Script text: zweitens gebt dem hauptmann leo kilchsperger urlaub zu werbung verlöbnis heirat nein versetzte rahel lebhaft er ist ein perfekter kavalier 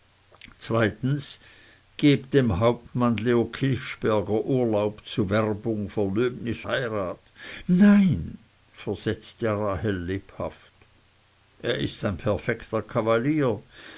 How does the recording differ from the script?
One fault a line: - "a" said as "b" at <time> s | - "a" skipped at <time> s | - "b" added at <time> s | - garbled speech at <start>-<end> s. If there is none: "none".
none